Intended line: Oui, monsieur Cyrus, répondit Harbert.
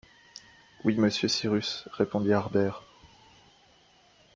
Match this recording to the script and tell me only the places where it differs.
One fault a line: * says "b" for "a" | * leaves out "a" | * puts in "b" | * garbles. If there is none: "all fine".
all fine